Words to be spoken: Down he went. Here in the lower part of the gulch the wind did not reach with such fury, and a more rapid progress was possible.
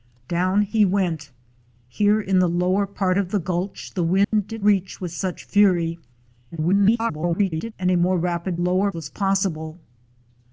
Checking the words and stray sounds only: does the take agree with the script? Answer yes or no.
no